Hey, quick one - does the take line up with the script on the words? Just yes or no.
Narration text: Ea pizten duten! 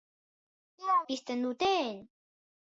yes